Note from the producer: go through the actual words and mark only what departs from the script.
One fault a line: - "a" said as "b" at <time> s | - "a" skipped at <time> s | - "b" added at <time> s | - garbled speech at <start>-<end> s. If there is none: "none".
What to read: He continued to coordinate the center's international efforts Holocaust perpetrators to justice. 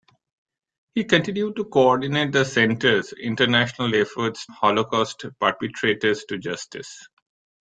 none